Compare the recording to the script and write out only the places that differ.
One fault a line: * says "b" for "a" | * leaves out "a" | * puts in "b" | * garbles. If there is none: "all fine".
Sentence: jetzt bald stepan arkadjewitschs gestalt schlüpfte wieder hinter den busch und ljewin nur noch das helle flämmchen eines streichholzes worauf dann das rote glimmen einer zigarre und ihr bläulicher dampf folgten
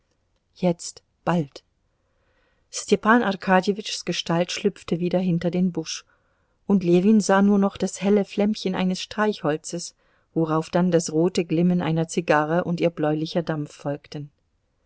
* puts in "sah"